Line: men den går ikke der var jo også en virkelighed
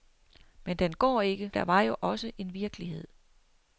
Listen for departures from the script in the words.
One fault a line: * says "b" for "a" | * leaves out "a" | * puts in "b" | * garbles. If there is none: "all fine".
all fine